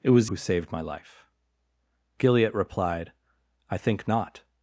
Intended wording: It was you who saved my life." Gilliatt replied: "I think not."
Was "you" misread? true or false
true